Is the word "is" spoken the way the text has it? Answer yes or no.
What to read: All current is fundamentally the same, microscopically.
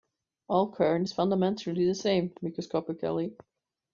yes